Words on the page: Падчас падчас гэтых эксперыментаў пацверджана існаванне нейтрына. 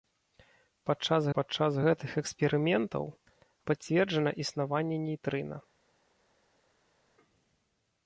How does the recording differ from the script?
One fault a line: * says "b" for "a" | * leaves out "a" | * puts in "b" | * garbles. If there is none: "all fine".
all fine